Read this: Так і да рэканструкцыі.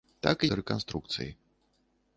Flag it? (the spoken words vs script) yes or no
no